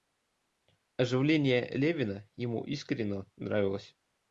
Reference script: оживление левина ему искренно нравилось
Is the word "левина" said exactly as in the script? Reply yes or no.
yes